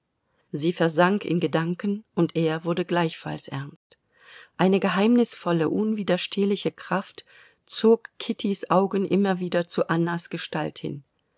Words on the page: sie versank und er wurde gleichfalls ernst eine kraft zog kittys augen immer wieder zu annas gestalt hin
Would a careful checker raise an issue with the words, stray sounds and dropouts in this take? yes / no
yes